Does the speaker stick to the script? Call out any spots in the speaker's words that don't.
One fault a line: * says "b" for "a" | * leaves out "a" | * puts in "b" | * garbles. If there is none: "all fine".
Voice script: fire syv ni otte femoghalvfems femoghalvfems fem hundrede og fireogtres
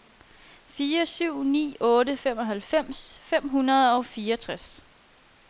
* leaves out "femoghalvfems"